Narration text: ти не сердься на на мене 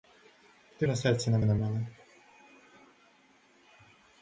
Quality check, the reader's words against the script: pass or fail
pass